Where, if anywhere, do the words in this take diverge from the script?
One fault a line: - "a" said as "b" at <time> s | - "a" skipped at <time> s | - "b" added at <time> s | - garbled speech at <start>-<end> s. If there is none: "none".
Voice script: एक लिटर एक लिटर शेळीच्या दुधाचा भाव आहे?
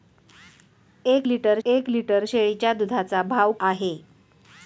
none